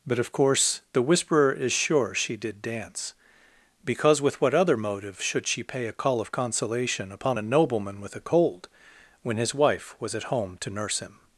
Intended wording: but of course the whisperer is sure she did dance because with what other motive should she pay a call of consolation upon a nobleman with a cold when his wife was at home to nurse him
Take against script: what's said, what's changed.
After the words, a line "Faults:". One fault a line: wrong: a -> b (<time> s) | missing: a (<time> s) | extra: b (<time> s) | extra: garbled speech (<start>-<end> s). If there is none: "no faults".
but of course the whisperer is sure she did dance because with what other motive should she pay a call of consolation upon a nobleman with a cold when his wife was at home to nurse him
Faults:
no faults